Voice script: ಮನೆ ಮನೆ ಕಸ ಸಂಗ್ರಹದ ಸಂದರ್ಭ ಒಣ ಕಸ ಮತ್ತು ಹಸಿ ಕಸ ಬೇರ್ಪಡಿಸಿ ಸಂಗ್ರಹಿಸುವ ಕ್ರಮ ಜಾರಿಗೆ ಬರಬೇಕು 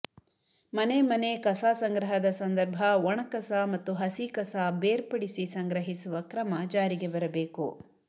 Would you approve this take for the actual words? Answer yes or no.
yes